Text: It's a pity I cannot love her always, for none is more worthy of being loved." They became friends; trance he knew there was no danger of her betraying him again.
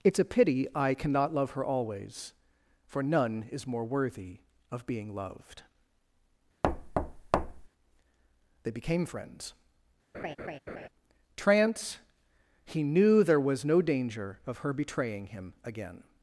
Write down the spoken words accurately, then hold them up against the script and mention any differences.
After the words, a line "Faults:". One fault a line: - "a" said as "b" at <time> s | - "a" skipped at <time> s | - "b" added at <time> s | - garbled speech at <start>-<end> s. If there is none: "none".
It's a pity I cannot love her always, for none is more worthy of being loved." They became friends; trance he knew there was no danger of her betraying him again.
Faults:
none